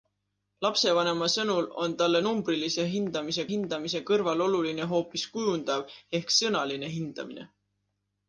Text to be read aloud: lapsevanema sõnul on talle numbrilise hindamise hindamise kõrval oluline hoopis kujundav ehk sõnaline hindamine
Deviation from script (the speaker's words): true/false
false